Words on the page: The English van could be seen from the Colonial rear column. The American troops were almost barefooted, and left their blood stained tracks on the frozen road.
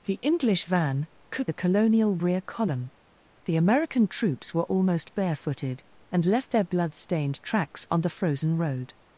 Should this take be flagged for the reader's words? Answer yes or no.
yes